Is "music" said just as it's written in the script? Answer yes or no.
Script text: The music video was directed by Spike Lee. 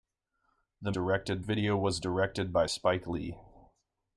no